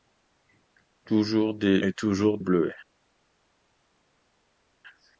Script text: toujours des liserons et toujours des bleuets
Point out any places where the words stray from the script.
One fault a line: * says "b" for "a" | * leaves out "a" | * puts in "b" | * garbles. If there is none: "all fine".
* leaves out "liserons"
* leaves out "des"